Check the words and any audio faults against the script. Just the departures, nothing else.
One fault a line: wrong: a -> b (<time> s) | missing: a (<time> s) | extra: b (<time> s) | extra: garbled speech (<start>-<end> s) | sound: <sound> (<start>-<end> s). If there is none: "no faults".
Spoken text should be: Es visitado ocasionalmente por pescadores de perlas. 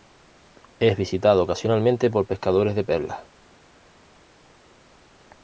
no faults